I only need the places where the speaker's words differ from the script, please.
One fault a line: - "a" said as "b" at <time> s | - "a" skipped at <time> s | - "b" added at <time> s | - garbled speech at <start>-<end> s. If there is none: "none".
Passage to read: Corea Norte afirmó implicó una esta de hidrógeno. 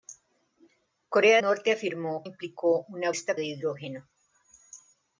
none